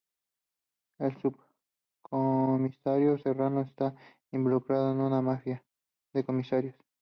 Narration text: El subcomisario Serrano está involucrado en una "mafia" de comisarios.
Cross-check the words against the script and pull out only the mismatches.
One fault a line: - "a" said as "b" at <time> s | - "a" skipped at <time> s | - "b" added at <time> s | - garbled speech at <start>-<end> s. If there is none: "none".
none